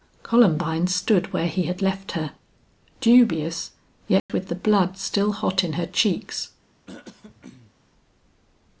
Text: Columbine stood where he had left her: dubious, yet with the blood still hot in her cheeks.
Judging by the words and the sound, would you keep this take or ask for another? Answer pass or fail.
fail